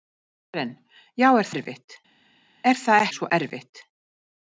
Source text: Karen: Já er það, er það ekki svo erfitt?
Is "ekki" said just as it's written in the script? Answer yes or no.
no